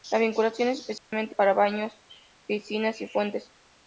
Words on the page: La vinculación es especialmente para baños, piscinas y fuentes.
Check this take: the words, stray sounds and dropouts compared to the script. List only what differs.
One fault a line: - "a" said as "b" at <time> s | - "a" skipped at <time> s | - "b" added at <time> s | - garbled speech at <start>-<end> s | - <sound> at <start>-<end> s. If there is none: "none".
- dropout at 1.0-1.1 s